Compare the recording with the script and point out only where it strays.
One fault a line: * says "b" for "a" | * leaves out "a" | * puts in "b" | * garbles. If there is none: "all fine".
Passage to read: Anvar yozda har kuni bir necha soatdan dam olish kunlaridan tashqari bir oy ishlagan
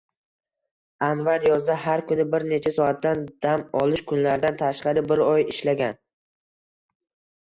all fine